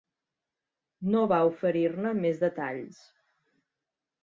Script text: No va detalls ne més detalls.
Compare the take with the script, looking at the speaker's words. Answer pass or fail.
fail